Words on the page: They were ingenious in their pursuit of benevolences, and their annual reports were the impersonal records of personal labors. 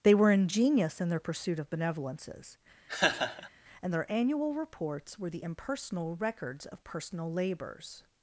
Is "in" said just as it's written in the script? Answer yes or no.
yes